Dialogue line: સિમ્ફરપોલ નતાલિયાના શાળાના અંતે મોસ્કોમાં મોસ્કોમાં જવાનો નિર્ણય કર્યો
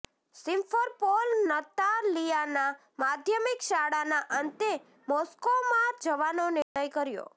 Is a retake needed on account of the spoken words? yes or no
yes